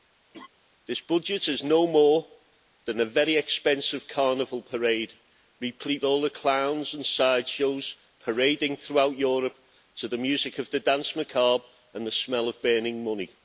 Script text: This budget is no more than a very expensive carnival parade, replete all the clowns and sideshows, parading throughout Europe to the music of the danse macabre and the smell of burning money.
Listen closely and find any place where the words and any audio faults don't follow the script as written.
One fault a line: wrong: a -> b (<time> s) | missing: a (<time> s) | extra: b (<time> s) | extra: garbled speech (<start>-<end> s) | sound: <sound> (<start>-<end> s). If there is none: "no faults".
sound: laugh (0.3-0.5 s)